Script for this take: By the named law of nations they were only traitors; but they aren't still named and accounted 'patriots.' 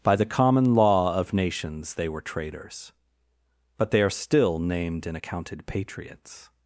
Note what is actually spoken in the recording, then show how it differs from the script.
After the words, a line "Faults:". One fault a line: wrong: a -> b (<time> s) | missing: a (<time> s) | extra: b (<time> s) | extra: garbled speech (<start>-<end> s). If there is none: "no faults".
By the common law of nations they were traitors; but they are still named and accounted 'patriots.'
Faults:
wrong: named -> common (0.2 s)
missing: only (2.2 s)
wrong: aren't -> are (4.0 s)